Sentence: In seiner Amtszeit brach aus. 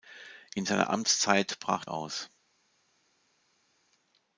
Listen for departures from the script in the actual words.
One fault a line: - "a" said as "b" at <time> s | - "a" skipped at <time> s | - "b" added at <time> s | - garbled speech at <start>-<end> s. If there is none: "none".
none